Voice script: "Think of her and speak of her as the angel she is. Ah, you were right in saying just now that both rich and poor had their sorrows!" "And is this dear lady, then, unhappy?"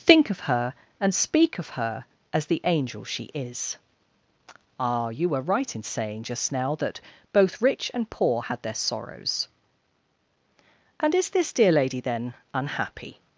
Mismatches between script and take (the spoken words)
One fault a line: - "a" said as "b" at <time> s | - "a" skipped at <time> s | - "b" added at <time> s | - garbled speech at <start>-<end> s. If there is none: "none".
none